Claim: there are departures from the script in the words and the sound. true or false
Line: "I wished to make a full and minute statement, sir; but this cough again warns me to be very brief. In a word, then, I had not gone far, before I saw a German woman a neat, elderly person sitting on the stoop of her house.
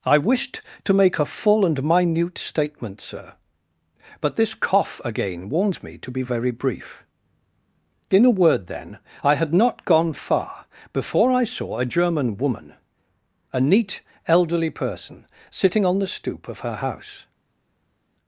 false